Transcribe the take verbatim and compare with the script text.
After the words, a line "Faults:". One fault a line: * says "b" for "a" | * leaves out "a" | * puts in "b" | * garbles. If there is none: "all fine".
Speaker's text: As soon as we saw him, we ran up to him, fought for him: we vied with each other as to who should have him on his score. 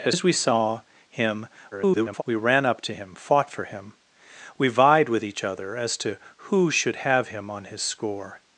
As as we saw him, [garbled] we ran up to him, fought for him: we vied with each other as to who should have him on his score.
Faults:
* leaves out "soon"
* garbles